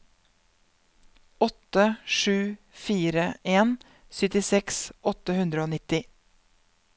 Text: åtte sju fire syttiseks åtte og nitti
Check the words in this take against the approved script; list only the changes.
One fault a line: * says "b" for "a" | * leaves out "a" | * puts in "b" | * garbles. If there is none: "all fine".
* puts in "en"
* puts in "hundre"